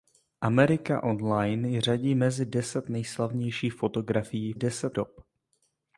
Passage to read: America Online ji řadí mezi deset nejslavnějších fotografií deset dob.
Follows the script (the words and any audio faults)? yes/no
yes